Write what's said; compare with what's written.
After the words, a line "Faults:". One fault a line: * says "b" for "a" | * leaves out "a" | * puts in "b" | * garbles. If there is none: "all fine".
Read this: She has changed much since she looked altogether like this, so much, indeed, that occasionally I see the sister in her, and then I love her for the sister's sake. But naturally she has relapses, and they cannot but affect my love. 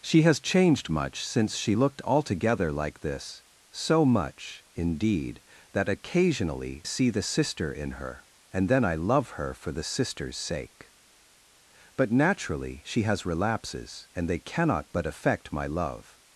She has changed much since she looked altogether like this, so much, indeed, that occasionally see the sister in her, and then I love her for the sister's sake. But naturally she has relapses, and they cannot but affect my love.
Faults:
* leaves out "I"